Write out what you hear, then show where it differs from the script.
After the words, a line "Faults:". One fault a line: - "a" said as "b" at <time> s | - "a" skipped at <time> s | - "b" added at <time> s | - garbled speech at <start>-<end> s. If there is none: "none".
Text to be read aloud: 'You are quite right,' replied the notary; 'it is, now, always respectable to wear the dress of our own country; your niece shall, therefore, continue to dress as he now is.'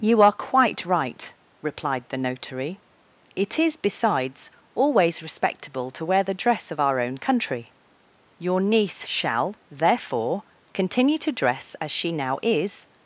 'You are quite right,' replied the notary; 'it is, besides, always respectable to wear the dress of our own country; your niece shall, therefore, continue to dress as she now is.'
Faults:
- "now" said as "besides" at 3.8 s
- "he" said as "she" at 11.9 s